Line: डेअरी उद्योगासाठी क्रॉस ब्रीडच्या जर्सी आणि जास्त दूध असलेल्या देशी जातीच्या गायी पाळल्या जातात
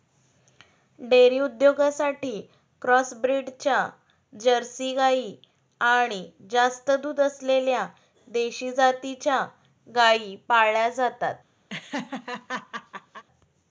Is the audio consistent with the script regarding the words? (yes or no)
no